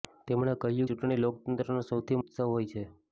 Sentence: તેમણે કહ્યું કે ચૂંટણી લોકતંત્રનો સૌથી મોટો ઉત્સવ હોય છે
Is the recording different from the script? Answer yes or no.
yes